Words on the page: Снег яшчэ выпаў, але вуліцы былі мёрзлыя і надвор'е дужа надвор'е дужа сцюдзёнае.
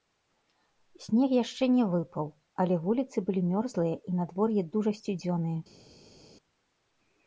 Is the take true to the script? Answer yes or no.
no